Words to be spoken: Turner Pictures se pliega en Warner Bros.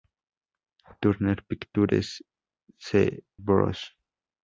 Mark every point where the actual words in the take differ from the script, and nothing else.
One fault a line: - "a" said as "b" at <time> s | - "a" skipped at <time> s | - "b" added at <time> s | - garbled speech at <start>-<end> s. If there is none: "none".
- "pliega en Warner" skipped at 3.2 s